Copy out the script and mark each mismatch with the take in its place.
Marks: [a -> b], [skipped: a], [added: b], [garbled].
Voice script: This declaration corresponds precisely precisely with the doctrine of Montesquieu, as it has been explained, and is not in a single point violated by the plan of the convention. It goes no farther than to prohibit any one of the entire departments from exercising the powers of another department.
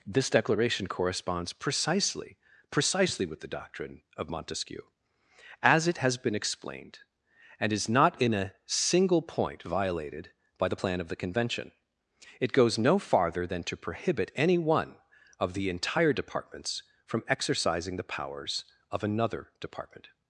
This declaration corresponds precisely precisely with the doctrine of Montesquieu, as it has been explained, and is not in a single point violated by the plan of the convention. It goes no farther than to prohibit any one of the entire departments from exercising the powers of another department.